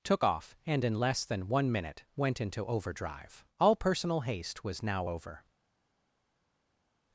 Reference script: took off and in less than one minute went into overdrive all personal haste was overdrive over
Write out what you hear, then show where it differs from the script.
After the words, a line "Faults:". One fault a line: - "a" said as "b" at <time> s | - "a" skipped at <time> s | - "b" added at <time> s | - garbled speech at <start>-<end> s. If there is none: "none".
took off and in less than one minute went into overdrive all personal haste was now over
Faults:
- "overdrive" said as "now" at 4.8 s